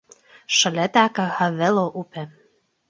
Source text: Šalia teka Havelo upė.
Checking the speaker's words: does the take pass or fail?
pass